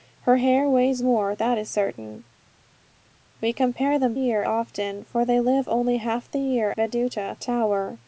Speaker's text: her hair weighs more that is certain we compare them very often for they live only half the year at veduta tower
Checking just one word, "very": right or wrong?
wrong